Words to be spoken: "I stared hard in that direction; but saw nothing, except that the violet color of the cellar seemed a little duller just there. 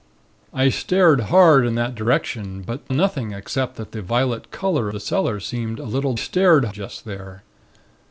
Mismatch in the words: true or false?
true